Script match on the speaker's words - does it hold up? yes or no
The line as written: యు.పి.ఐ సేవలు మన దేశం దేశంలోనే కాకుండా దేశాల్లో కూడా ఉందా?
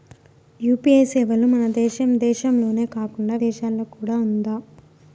yes